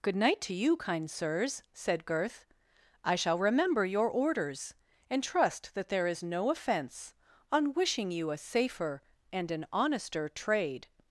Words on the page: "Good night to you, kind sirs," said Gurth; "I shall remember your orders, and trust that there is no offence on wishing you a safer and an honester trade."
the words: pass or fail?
pass